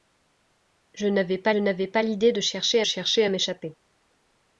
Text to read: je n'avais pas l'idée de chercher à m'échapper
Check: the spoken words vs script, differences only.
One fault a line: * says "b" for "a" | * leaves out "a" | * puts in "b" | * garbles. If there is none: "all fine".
* puts in "n'avais pas"
* puts in "chercher"